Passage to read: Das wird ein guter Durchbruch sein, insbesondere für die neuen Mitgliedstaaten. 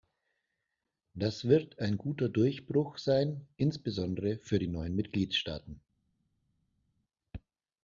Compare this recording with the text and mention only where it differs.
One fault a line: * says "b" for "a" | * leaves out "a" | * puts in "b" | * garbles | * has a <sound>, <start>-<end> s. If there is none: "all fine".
all fine